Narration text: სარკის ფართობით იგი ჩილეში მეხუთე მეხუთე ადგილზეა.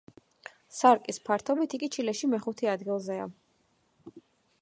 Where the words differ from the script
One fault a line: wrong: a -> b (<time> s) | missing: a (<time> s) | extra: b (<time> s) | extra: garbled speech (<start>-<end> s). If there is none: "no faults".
missing: მეხუთე (2.7 s)